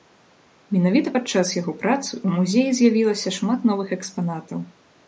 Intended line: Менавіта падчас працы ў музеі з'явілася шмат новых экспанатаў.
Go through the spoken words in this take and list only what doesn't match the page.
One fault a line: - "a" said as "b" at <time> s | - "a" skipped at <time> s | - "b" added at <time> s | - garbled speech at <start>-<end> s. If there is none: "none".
- "яго" added at 1.6 s